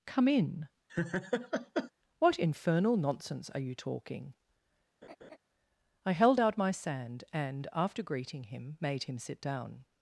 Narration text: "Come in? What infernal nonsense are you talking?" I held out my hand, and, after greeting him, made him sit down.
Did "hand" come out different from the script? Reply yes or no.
yes